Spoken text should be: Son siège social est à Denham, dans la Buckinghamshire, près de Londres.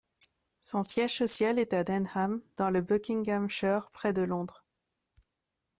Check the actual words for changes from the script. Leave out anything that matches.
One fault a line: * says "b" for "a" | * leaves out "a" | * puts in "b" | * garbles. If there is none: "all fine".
* says "le" for "la"